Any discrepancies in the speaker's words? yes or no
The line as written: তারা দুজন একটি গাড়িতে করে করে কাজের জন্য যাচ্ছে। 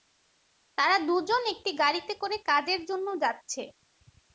yes